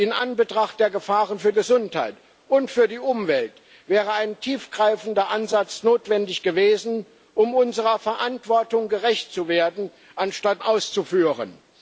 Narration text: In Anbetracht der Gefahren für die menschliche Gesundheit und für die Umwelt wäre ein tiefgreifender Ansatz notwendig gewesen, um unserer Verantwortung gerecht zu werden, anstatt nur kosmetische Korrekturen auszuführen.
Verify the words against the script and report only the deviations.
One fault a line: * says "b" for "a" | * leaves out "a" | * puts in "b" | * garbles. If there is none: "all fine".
* leaves out "die menschliche"
* leaves out "nur kosmetische Korrekturen"